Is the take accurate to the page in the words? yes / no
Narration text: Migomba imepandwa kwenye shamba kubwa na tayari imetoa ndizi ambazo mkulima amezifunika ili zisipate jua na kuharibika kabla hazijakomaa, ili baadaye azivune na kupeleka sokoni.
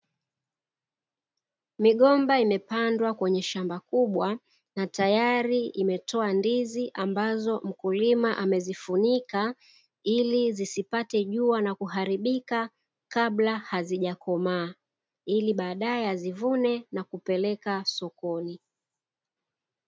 yes